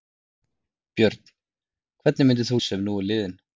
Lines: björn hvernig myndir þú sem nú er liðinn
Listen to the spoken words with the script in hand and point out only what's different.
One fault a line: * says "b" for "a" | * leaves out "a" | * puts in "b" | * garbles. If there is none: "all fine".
all fine